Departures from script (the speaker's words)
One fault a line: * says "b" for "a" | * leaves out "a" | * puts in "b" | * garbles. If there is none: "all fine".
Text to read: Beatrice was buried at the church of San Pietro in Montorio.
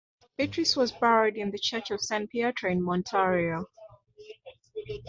* says "in" for "at"